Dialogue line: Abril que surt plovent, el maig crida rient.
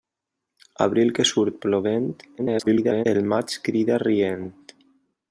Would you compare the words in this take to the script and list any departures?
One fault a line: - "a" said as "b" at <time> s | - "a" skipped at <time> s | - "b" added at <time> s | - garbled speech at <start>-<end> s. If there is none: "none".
- garbled speech at 2.4-3.1 s